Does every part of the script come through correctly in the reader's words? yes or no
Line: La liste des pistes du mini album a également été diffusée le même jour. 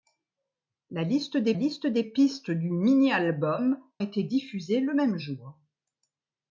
no